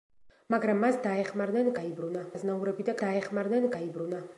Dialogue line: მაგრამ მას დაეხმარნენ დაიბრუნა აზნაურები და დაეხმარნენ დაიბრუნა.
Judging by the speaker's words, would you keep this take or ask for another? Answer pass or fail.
pass